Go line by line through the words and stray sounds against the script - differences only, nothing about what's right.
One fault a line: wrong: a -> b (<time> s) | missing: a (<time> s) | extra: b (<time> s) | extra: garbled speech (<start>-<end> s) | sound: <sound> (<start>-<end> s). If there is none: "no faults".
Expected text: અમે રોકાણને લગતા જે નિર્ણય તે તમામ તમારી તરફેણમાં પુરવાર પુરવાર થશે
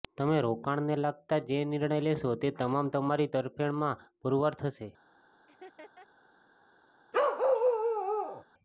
wrong: અમે -> તમે (0.1 s)
extra: લેશો (2.0 s)
missing: પુરવાર (4.5 s)
sound: laugh (5.5-6.1 s)
sound: bark (7.1-8.4 s)